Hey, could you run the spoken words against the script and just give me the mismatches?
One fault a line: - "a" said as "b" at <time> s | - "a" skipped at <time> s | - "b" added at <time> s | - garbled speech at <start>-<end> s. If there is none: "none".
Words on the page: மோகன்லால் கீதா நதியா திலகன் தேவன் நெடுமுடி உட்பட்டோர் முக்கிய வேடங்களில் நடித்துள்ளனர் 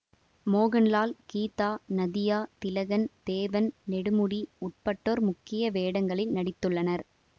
none